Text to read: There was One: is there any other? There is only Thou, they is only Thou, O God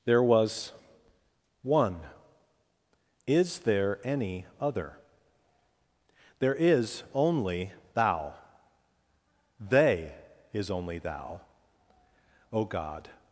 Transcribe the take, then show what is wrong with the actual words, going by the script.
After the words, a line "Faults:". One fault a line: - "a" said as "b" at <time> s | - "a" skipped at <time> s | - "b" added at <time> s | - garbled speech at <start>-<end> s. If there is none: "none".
There was One: is there any other? There is only Thou, they is only Thou, O God
Faults:
none